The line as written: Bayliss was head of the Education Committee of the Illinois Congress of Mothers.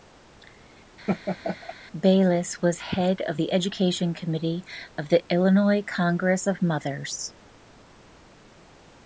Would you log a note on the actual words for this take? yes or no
no